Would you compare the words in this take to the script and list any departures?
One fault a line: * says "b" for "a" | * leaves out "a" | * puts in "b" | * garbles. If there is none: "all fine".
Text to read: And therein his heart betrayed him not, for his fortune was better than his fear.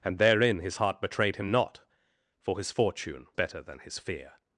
* leaves out "was"